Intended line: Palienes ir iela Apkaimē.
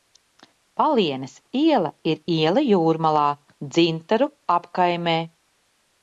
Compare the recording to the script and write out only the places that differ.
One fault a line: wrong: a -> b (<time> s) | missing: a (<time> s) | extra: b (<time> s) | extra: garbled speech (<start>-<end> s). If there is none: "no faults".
extra: iela (1.6 s)
extra: Jūrmalā Dzintaru (2.7 s)